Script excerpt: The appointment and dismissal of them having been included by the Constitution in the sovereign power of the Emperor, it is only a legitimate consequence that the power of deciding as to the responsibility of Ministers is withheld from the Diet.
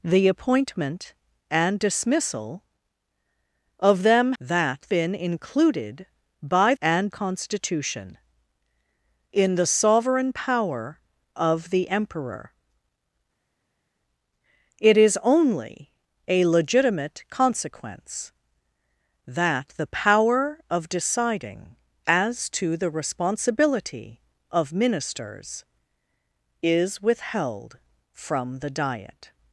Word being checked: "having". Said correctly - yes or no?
no